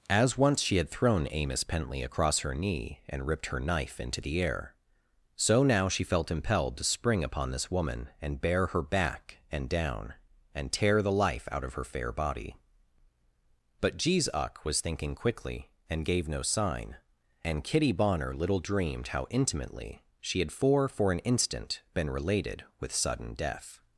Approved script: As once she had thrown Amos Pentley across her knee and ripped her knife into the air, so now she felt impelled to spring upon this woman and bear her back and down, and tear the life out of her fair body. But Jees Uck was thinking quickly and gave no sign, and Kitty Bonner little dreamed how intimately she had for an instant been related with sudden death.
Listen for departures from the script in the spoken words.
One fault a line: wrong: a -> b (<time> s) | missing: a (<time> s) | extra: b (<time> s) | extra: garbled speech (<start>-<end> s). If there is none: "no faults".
extra: for (20.9 s)